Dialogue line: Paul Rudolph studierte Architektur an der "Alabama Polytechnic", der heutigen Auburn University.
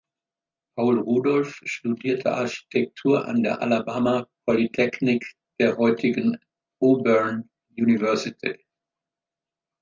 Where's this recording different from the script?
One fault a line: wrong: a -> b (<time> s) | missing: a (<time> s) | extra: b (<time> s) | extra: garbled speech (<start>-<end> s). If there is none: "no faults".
no faults